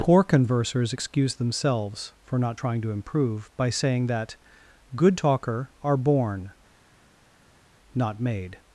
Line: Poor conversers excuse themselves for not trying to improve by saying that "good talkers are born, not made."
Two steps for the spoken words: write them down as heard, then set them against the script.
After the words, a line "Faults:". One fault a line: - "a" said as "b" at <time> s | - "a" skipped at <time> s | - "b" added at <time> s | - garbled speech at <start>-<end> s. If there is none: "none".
Poor conversers excuse themselves for not trying to improve by saying that "good talker are born, not made."
Faults:
- "talkers" said as "talker" at 5.2 s